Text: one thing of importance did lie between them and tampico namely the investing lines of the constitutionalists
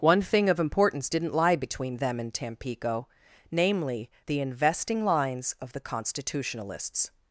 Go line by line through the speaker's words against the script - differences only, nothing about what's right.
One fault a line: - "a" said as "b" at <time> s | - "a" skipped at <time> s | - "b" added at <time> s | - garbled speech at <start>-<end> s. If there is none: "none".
- "did" said as "didn't" at 1.1 s